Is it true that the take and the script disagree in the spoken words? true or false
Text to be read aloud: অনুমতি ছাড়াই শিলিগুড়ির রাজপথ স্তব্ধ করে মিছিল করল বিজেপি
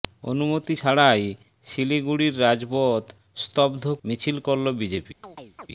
true